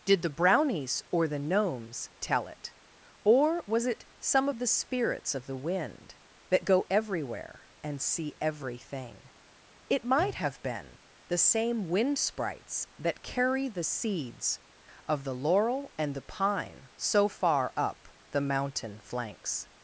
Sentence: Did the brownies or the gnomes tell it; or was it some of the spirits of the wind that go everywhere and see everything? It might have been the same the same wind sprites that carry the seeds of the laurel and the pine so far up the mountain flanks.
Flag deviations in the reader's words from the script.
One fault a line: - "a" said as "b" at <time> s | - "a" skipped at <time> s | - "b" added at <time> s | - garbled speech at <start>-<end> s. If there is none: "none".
- "the same" skipped at 11.9 s